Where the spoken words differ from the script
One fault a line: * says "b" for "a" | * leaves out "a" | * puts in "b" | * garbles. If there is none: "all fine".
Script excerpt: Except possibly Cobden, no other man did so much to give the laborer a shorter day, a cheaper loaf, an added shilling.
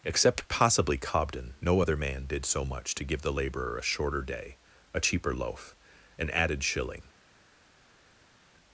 all fine